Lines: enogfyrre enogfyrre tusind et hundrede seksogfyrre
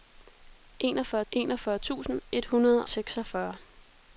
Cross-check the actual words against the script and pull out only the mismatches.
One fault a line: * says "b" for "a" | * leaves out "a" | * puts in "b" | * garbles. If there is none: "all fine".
all fine